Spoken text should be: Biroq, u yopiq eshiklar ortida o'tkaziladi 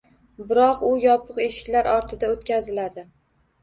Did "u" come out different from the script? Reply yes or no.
no